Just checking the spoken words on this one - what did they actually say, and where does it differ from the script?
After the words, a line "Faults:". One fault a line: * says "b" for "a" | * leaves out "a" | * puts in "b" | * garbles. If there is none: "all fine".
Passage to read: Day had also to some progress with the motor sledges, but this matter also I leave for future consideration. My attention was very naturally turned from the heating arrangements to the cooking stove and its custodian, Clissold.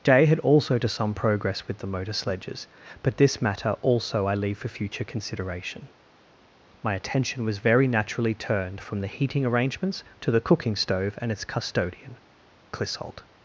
Day had also to some progress with the motor sledges, but this matter also I leave for future consideration. My attention was very naturally turned from the heating arrangements to the cooking stove and its custodian, Clissold.
Faults:
all fine